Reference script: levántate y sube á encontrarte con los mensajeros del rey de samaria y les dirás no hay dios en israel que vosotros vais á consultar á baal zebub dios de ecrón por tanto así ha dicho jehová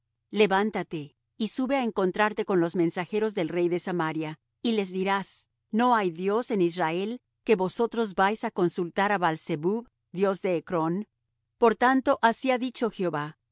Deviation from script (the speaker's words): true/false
false